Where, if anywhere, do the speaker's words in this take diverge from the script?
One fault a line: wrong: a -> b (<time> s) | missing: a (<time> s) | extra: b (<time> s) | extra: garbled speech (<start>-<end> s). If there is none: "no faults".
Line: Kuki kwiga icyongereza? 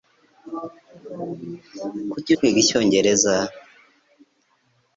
no faults